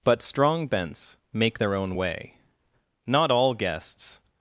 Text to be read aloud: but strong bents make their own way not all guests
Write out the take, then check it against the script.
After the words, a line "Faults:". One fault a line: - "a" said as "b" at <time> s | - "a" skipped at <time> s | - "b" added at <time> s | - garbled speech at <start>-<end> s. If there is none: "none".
but strong bents make their own way not all guests
Faults:
none